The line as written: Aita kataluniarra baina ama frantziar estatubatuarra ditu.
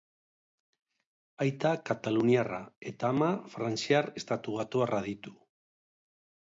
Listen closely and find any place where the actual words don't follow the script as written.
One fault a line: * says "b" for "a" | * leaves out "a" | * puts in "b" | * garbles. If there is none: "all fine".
* says "eta" for "baina"